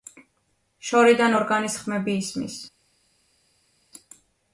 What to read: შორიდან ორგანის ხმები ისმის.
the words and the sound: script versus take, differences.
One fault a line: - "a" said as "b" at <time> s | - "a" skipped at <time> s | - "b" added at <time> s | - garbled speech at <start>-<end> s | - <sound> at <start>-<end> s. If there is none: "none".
none